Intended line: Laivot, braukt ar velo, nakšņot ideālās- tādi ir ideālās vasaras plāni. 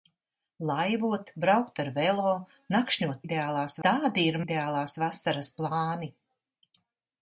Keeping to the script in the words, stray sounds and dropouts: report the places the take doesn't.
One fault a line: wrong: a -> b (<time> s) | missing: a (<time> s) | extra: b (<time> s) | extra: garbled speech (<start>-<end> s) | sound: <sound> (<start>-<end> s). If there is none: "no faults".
no faults